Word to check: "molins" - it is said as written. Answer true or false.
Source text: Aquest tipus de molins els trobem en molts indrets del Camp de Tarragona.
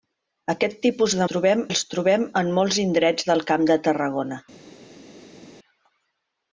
false